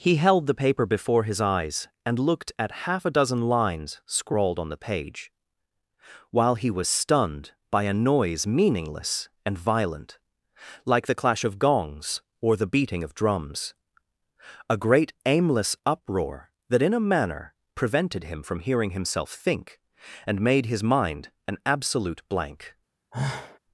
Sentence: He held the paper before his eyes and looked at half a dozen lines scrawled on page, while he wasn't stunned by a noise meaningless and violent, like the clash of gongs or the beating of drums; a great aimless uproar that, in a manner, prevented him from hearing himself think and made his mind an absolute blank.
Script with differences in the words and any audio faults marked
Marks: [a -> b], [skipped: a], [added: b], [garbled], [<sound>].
He held the paper before his eyes and looked at half a dozen lines scrawled on [added: the] page, while he [wasn't -> was] stunned by a noise meaningless and violent, like the clash of gongs or the beating of drums; a great aimless uproar that, in a manner, prevented him from hearing himself think and made his mind an absolute blank. [sigh]